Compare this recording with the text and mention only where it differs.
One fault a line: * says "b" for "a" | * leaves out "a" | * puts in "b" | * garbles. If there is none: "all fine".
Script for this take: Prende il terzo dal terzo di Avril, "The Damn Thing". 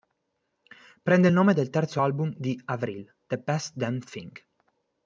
* says "nome" for "terzo"
* puts in "album"
* puts in "Best"